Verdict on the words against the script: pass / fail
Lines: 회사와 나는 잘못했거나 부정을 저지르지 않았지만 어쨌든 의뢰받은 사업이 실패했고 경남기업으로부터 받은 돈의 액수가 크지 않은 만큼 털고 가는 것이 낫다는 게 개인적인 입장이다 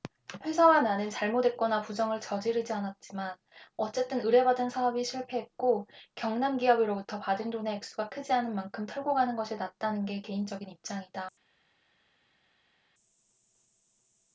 pass